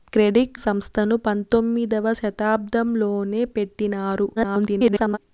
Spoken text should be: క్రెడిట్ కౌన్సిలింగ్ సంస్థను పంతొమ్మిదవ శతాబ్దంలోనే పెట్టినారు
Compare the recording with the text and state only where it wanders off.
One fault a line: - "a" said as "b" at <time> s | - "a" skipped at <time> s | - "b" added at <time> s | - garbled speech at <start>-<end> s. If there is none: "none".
- "కౌన్సిలింగ్" skipped at 0.6 s
- garbled speech at 4.4-5.2 s